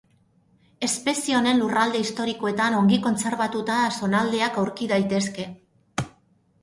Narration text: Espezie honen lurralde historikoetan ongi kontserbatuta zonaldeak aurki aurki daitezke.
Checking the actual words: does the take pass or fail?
fail